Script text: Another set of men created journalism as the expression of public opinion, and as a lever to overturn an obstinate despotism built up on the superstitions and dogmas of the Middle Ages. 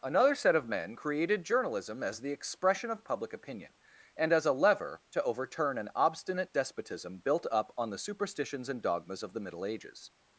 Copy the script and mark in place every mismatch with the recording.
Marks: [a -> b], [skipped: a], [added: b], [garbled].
Another set of men created journalism as the expression of public opinion, and as a lever to overturn an obstinate despotism built up on the superstitions and dogmas of the Middle Ages.